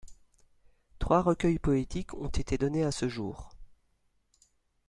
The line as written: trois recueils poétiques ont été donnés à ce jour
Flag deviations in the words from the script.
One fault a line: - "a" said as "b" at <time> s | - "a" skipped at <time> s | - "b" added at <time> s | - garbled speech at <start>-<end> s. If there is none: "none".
none